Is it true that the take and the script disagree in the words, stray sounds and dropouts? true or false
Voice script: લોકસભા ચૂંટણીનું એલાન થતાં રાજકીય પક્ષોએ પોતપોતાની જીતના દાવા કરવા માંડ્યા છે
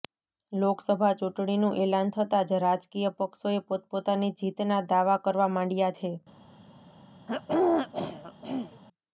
true